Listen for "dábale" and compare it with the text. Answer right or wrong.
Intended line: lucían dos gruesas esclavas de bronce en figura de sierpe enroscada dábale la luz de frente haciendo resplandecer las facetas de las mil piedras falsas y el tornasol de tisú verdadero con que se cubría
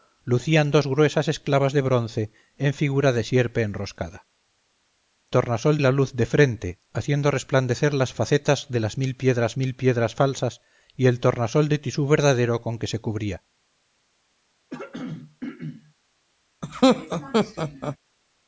wrong